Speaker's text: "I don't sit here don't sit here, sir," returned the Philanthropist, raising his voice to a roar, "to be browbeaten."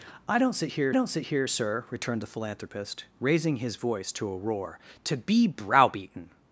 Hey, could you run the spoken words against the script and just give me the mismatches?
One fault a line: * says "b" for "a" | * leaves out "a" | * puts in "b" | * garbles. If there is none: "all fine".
all fine